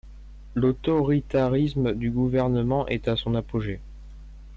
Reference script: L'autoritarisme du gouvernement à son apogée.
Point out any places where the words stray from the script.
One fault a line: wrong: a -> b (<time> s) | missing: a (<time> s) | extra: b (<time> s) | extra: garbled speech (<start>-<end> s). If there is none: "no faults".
extra: est (2.9 s)